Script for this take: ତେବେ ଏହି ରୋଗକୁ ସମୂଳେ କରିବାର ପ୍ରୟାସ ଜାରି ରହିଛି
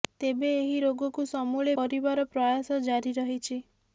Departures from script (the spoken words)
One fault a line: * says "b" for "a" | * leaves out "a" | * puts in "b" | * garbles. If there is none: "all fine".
all fine